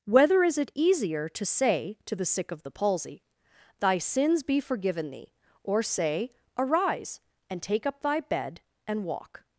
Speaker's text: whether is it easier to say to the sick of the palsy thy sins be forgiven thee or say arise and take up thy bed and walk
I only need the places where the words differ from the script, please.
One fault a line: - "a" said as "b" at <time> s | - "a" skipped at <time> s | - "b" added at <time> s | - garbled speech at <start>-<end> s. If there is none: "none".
none